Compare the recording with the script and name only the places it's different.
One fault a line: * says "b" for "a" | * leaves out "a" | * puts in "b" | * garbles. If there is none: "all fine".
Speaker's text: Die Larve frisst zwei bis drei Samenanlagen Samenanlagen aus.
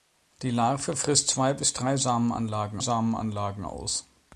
all fine